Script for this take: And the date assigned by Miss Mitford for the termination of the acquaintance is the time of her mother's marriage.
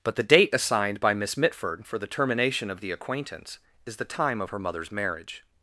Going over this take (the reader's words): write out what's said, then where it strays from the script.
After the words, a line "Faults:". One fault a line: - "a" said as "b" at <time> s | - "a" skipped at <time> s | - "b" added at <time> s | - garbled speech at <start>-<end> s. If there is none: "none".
But the date assigned by Miss Mitford for the termination of the acquaintance is the time of her mother's marriage.
Faults:
- "And" said as "But" at 0.0 s